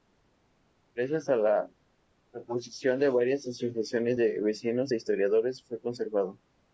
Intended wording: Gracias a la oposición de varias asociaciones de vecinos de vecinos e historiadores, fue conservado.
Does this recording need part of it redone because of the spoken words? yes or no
yes